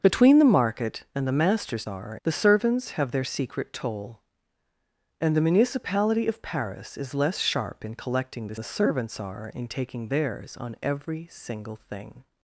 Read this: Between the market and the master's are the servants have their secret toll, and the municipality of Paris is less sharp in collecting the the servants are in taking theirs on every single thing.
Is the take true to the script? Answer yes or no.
yes